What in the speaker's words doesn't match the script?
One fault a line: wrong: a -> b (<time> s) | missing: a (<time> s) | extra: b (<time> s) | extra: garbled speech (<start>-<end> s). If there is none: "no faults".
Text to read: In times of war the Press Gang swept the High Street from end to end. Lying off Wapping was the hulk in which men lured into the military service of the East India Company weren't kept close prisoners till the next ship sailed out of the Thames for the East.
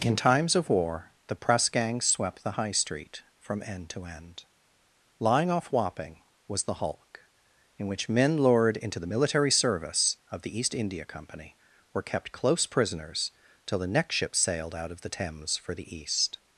wrong: weren't -> were (11.9 s)